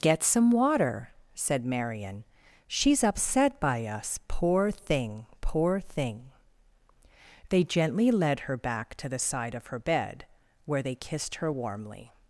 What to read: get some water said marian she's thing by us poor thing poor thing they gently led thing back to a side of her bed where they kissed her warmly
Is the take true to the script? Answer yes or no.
no